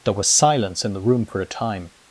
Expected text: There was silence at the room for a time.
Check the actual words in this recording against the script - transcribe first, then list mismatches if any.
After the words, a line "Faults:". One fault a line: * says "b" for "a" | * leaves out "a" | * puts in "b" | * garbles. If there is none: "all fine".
There was silence in the room for a time.
Faults:
* says "in" for "at"